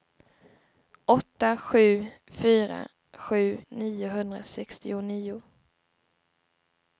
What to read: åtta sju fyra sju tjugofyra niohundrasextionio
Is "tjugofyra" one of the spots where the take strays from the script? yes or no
yes